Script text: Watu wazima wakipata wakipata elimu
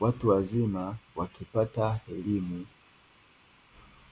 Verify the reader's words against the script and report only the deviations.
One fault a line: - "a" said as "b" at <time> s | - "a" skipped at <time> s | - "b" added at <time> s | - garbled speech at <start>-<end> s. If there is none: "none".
- "wakipata" skipped at 2.0 s